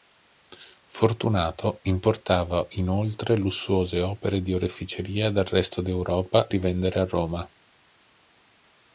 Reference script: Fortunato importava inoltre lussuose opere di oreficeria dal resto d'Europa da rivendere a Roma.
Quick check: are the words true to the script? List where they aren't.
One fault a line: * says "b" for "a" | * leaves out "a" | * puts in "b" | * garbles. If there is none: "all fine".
* leaves out "da"